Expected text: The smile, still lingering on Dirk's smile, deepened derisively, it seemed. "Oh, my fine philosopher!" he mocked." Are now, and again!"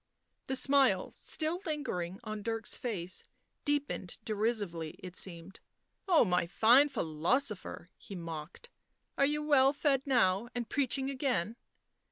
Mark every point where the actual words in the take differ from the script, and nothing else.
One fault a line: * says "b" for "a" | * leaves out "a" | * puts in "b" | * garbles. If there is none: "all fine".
* says "face" for "smile"
* puts in "you well fed"
* puts in "preaching"